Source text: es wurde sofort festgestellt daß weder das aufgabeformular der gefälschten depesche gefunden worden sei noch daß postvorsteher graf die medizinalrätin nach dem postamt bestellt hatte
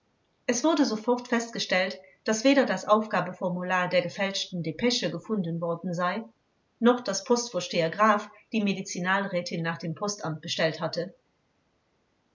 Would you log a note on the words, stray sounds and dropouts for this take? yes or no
no